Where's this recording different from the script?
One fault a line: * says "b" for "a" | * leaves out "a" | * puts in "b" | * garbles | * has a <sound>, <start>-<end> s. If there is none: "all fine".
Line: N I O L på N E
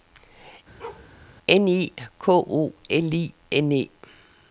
* has a bark, 0.8-1.1 s
* puts in "K"
* says "I" for "på"